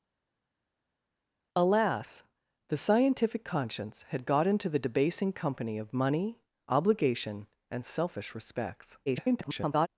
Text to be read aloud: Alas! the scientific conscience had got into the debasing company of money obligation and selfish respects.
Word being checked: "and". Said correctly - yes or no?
yes